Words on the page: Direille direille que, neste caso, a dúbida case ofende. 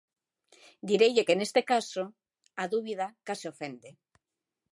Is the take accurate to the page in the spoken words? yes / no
no